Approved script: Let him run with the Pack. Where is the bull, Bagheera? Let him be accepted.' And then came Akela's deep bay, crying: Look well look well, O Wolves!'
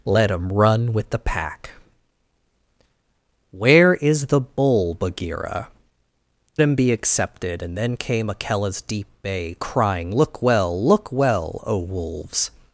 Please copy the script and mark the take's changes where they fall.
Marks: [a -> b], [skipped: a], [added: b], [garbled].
Let him run with the Pack. Where is the bull, Bagheera? [skipped: Let] him be accepted.' And then came Akela's deep bay, crying: Look well look well, O Wolves!'